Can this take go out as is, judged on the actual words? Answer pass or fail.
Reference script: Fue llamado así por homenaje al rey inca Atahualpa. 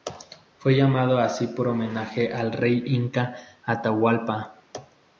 pass